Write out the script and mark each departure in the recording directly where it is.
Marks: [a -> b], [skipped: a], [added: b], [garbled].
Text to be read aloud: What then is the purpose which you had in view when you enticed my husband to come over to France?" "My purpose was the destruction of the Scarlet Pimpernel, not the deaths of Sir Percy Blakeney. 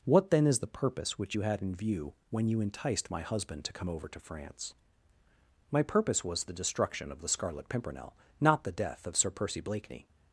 What then is the purpose which you had in view when you enticed my husband to come over to France?" "My purpose was the destruction of the Scarlet Pimpernel, not the [deaths -> death] of Sir Percy Blakeney.